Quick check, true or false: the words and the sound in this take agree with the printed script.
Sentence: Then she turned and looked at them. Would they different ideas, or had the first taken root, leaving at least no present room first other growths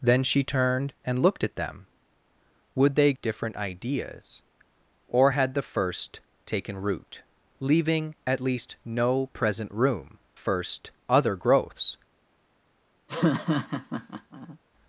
false